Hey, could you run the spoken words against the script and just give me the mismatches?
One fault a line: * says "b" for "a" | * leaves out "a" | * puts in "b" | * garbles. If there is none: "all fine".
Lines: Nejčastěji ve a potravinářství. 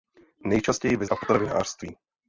all fine